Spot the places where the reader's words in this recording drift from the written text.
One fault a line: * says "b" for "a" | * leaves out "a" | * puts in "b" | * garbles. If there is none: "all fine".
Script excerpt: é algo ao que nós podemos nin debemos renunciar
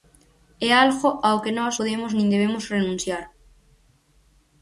all fine